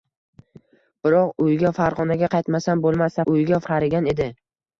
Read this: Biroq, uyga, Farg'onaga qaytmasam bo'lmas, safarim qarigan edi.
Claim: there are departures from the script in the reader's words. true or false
true